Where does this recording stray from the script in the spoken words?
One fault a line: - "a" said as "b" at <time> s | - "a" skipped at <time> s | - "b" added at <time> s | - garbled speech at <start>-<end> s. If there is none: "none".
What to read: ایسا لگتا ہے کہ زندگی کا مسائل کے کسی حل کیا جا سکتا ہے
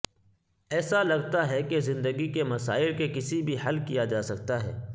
- "کا" said as "کے" at 2.3 s
- "بھی" added at 3.4 s